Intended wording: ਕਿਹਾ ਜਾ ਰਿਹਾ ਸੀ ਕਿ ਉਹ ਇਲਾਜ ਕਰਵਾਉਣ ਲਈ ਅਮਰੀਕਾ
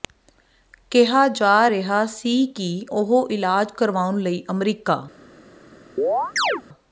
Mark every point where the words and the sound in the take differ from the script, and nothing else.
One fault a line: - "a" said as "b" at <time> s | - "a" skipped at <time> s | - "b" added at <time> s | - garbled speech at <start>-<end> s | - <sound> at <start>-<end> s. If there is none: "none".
- chirp at 6.0-6.6 s